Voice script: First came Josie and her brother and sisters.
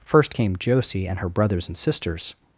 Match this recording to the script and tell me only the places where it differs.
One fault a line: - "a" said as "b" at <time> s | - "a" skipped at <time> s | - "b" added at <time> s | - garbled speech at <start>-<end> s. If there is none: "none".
- "brother" said as "brothers" at 1.3 s